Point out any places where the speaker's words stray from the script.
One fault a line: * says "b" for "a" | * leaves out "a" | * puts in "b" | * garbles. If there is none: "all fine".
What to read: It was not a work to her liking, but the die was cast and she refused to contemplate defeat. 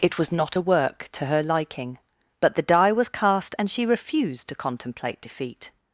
all fine